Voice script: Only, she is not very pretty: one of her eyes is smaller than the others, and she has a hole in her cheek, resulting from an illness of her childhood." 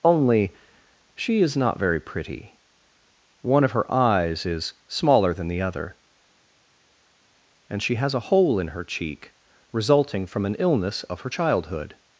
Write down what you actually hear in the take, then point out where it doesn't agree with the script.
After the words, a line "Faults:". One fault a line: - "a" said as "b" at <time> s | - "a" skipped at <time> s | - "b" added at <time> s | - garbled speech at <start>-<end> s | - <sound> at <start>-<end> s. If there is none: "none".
Only, she is not very pretty: one of her eyes is smaller than the other, and she has a hole in her cheek, resulting from an illness of her childhood."
Faults:
- "others" said as "other" at 5.6 s